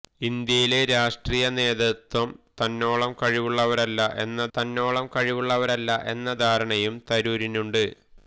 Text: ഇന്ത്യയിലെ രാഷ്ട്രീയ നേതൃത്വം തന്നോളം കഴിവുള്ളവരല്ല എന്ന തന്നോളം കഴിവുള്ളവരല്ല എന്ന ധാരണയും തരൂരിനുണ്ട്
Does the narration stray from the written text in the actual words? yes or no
no